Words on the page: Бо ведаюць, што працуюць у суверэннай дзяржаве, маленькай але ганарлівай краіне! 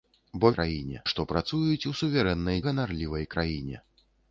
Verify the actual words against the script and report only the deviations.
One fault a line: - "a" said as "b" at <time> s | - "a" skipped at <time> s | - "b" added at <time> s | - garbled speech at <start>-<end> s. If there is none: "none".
- "ведаюць" said as "краіне" at 0.6 s
- "дзяржаве маленькай але" skipped at 2.6 s